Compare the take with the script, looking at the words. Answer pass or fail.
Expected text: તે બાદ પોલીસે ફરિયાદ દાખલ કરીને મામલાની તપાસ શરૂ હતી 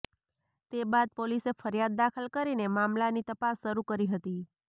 fail